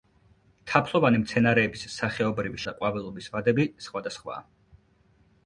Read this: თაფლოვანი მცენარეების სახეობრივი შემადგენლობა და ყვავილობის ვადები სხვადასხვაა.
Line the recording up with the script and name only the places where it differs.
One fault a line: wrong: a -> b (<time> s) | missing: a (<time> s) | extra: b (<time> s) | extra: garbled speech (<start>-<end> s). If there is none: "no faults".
missing: შემადგენლობა (2.6 s)